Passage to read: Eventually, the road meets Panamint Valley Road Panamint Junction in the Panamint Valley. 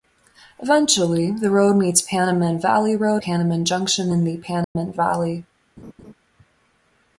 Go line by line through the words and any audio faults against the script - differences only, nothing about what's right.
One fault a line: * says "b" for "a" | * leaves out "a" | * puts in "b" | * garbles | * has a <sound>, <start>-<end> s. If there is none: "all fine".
* has a dropout, 4.6-4.8 s
* has a laugh, 5.8-6.1 s